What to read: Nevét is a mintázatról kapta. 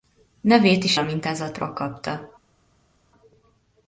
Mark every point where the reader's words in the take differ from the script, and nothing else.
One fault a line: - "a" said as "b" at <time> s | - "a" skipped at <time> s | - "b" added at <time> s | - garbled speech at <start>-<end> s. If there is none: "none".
none